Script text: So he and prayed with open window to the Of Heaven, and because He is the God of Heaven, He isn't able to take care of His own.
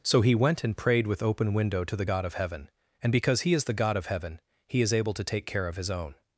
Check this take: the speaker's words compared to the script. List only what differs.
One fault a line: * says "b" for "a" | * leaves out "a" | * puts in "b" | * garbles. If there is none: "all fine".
* puts in "went"
* puts in "God"
* says "is" for "isn't"